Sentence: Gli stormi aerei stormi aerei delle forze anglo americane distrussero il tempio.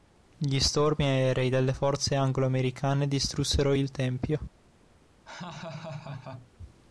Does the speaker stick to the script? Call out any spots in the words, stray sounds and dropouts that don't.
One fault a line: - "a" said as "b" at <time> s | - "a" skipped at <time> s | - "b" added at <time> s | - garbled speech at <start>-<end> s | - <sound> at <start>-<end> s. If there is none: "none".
- "stormi aerei" skipped at 1.5 s
- laugh at 5.3-6.5 s